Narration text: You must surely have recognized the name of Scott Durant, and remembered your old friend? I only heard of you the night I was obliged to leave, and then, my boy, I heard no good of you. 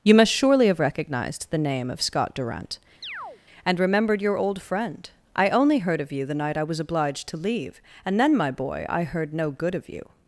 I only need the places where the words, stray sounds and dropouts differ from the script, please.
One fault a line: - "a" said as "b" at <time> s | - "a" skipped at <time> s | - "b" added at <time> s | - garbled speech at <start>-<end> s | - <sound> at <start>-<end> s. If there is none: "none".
- chirp at 3.0-3.4 s